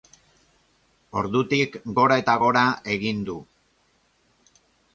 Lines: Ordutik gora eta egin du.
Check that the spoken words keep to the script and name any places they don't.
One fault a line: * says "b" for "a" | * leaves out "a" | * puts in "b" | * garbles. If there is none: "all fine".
* puts in "gora"